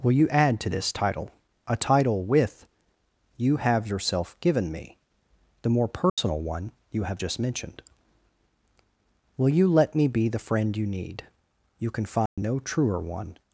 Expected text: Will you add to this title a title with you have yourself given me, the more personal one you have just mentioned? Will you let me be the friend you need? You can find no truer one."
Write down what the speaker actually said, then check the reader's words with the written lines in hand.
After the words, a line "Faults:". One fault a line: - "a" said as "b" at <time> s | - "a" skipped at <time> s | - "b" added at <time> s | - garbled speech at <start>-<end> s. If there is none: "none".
Will you add to this title a title with you have yourself given me, the more personal one you have just mentioned? Will you let me be the friend you need? You can find no truer one."
Faults:
none